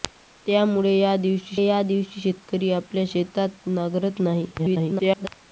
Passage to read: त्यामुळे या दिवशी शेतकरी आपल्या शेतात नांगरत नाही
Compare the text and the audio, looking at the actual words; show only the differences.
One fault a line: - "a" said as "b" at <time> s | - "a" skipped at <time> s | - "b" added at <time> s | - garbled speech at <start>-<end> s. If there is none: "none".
- "या दिवशी" added at 1.6 s
- garbled speech at 4.6-5.3 s